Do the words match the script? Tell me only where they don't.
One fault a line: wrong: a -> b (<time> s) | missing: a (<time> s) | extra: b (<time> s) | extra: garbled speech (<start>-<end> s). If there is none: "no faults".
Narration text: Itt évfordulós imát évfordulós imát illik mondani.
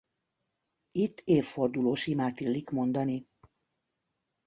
missing: évfordulós imát (2.4 s)